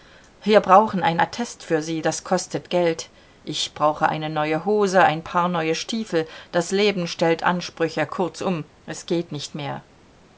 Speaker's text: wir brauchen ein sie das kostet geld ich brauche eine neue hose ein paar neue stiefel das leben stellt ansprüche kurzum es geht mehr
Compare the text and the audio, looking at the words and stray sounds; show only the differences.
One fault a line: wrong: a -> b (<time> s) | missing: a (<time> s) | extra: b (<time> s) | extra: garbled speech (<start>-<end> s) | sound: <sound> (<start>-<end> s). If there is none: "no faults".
extra: attest für (1.2 s)
extra: nicht (9.3 s)